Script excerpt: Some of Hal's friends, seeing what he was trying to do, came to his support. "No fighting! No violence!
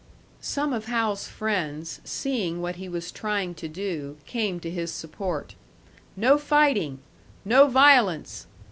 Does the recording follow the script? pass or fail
pass